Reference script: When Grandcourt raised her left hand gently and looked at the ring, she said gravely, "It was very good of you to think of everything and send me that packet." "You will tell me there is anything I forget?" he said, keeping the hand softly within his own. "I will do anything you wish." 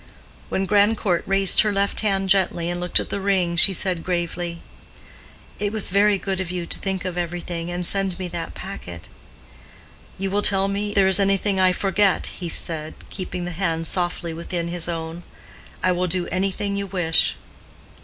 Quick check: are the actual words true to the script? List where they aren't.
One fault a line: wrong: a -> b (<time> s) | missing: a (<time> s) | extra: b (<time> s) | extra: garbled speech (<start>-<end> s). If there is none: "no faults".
no faults